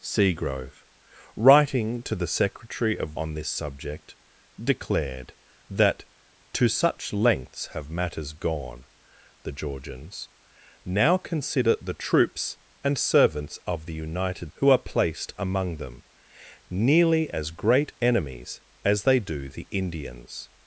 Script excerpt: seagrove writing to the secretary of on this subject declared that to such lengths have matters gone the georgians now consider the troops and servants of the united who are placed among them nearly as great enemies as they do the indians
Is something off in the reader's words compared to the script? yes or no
no